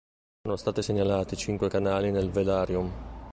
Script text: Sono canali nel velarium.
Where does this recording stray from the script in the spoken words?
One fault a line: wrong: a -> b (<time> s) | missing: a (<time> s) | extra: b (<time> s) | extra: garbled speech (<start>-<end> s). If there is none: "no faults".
extra: stati segnalati cinque (0.6 s)